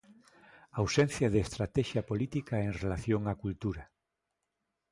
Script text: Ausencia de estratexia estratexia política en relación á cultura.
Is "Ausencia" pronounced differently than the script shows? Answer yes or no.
no